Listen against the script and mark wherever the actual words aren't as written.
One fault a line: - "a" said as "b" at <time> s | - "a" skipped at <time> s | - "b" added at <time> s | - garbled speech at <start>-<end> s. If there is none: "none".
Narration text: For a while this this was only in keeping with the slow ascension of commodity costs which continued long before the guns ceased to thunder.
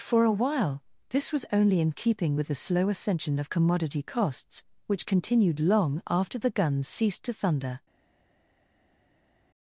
- "this" skipped at 1.3 s
- "before" said as "after" at 6.1 s